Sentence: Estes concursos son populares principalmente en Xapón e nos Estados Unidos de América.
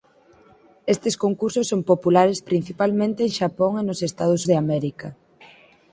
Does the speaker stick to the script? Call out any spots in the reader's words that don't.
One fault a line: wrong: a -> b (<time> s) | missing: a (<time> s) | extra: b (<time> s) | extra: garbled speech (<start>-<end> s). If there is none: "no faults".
missing: Unidos (4.4 s)